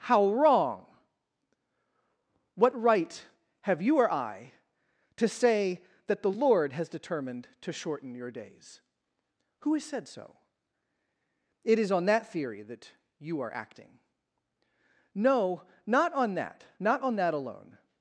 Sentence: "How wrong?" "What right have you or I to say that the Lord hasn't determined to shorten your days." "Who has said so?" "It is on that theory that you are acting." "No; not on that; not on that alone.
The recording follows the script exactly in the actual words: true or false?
false